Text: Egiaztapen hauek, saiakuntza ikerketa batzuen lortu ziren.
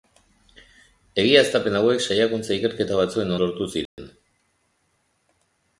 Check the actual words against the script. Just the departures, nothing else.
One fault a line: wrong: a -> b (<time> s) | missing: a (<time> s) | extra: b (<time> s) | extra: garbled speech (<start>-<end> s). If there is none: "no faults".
no faults